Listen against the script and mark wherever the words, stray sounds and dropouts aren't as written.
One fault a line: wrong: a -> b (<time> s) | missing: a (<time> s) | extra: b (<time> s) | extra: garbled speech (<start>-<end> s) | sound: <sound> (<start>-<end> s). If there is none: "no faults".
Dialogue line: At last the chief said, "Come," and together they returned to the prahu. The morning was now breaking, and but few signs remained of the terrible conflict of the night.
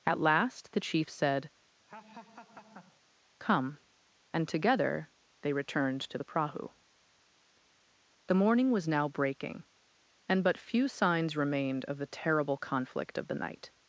sound: laugh (1.9-3.0 s)